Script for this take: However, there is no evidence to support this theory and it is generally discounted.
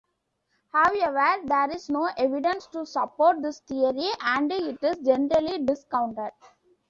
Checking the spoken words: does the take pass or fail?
pass